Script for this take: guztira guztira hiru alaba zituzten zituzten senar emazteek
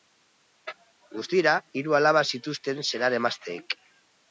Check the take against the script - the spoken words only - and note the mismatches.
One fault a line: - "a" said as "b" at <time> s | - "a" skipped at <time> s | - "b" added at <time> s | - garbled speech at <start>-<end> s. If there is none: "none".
- "guztira" skipped at 1.5 s
- "zituzten" skipped at 2.8 s